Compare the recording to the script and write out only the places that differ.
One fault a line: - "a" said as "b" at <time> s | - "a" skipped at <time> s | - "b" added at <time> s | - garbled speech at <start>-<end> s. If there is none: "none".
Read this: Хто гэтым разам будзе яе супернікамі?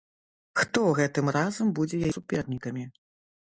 none